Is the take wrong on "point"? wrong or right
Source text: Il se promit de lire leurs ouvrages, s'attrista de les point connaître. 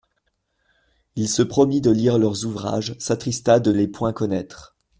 right